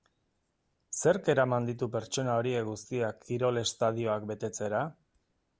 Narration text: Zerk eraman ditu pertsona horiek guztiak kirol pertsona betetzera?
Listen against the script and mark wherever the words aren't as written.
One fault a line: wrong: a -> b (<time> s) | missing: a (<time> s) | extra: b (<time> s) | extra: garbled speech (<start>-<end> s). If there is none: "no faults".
wrong: pertsona -> estadioak (3.7 s)